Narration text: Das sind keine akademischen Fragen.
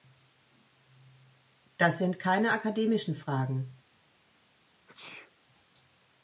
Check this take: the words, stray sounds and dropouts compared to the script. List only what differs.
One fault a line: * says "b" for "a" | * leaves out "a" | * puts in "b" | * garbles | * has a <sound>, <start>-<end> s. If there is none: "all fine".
* has a sneeze, 4.9-5.3 s